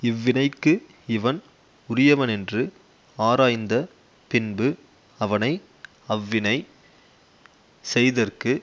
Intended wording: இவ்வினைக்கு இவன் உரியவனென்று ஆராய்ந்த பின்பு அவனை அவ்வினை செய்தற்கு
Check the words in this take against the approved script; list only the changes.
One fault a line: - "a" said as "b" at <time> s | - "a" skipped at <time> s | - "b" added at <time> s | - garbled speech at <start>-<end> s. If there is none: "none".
none